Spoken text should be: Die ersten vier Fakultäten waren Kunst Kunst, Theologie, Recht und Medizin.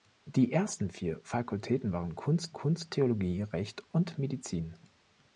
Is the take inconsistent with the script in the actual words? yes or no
no